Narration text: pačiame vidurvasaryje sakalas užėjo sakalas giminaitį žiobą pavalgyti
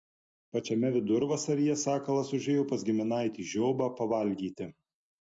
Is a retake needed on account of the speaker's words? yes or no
yes